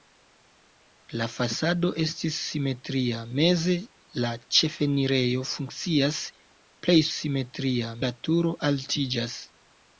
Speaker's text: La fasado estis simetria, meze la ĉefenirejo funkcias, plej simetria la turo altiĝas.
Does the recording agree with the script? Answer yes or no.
yes